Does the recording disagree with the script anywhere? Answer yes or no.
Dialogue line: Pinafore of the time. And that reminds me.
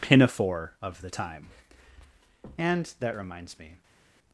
no